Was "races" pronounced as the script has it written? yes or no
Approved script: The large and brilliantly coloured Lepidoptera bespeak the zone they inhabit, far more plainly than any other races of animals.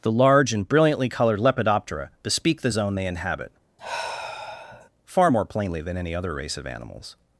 no